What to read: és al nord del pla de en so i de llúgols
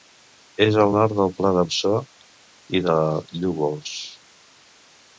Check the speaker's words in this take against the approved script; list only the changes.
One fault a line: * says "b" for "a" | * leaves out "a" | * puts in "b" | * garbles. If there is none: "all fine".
all fine